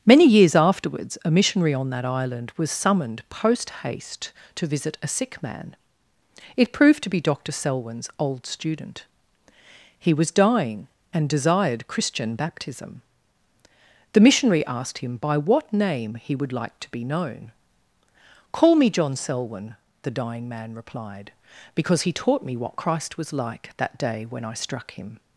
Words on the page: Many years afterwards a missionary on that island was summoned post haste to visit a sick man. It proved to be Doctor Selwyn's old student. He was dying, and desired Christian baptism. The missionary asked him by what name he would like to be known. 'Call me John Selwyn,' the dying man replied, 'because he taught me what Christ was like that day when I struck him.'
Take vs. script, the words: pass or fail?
pass